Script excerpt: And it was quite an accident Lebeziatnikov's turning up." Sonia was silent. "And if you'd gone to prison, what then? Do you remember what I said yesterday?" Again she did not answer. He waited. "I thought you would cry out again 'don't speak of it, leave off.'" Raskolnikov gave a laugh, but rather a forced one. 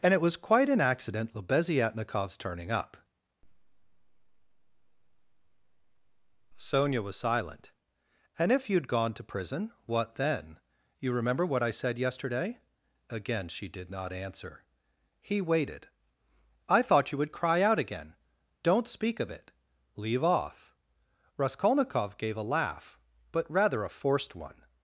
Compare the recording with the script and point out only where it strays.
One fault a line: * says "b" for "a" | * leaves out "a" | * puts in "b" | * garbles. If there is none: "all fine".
* leaves out "Do"